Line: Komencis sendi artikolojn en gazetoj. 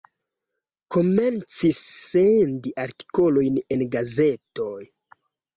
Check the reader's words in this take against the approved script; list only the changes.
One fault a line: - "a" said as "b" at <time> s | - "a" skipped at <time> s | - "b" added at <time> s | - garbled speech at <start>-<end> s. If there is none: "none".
none